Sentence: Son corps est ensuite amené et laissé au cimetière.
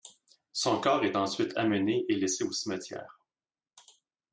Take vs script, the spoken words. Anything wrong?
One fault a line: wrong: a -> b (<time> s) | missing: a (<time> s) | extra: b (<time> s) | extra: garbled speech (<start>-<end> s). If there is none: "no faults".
no faults